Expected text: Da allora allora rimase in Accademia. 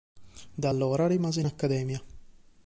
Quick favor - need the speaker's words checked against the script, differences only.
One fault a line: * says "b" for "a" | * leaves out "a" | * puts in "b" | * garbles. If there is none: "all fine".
* leaves out "allora"